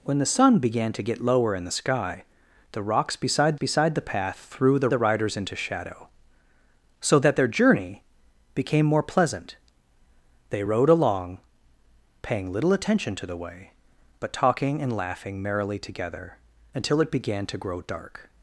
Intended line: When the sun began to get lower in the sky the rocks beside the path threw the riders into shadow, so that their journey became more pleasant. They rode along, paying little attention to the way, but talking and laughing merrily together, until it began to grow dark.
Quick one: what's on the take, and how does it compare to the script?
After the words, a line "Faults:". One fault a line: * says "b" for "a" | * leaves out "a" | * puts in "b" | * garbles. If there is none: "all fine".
When the sun began to get lower in the sky the rocks beside beside the path threw the the riders into shadow, so that their journey became more pleasant. They rode along, paying little attention to the way, but talking and laughing merrily together, until it began to grow dark.
Faults:
* puts in "beside"
* puts in "the"